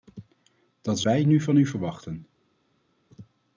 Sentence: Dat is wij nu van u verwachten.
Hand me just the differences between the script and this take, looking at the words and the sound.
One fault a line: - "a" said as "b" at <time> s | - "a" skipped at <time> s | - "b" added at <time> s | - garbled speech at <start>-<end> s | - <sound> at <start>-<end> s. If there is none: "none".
none